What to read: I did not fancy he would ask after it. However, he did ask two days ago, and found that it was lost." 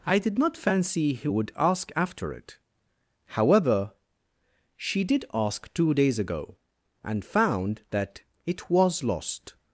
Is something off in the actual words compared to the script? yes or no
yes